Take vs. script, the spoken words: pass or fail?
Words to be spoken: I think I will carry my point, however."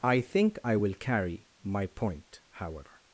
pass